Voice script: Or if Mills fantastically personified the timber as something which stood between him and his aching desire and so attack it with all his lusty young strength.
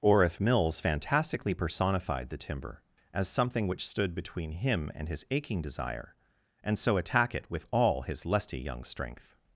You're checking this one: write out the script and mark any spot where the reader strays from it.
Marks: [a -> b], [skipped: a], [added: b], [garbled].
Or if Mills fantastically personified the timber as something which stood between him and his aching desire and so attack it with all his lusty young strength.